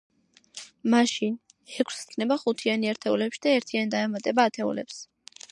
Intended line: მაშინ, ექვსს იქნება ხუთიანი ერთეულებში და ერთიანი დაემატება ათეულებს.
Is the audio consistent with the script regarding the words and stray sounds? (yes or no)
yes